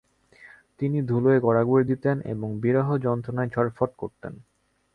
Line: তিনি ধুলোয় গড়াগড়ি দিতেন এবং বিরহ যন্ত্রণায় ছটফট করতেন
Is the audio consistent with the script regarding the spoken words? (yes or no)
yes